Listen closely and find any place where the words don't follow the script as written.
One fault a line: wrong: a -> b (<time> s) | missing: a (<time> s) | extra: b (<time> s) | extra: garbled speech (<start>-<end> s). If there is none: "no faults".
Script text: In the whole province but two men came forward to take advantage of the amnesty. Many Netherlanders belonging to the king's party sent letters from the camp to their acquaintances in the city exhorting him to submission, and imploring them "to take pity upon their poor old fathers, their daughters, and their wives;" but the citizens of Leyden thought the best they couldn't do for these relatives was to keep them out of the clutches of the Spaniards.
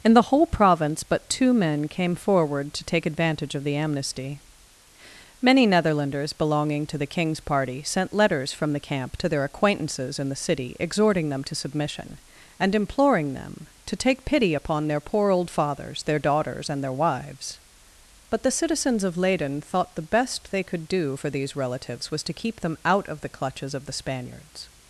wrong: him -> them (11.3 s)
wrong: couldn't -> could (20.6 s)